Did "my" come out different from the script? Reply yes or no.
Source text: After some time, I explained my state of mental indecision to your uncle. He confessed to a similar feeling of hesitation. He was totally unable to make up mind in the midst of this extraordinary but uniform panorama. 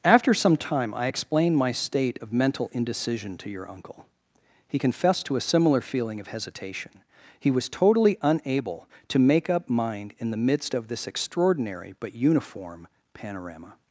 no